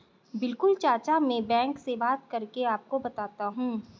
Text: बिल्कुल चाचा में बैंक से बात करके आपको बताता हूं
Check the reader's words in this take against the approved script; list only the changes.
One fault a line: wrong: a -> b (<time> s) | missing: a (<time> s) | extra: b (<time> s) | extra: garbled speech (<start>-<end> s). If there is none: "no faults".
no faults